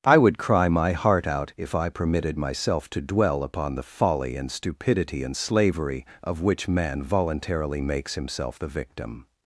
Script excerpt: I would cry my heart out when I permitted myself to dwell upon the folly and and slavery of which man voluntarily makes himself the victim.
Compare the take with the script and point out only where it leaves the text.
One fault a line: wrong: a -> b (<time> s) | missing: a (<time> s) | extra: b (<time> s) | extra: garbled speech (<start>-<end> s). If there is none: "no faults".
wrong: when -> if (1.6 s)
extra: stupidity (4.5 s)